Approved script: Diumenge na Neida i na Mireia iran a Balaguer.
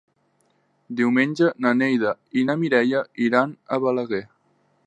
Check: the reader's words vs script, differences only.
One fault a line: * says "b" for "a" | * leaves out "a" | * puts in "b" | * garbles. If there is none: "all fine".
all fine